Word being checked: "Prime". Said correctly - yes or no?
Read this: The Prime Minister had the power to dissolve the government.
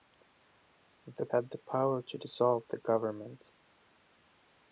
no